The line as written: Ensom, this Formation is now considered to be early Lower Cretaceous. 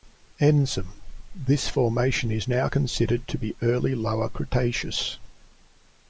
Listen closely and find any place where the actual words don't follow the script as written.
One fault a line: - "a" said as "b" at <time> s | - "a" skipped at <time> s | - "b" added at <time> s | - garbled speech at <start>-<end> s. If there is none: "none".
none